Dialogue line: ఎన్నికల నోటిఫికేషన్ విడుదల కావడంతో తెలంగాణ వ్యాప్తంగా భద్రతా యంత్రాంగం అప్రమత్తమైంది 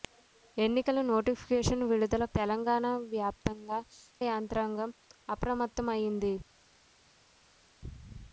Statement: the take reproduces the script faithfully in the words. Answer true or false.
false